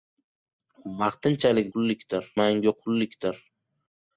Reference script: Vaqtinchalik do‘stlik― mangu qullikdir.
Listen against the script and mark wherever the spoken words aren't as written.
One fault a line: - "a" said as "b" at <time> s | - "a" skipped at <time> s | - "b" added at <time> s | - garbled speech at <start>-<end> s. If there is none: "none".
- "do‘stlik" said as "qullikdir" at 1.7 s